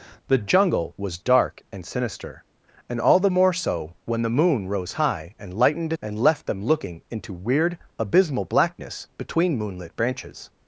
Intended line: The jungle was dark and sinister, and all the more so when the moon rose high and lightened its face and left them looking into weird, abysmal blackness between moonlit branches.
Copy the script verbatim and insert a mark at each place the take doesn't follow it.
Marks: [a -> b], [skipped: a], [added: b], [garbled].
The jungle was dark and sinister, and all the more so when the moon rose high and lightened [skipped: its face] and left them looking into weird, abysmal blackness between moonlit branches.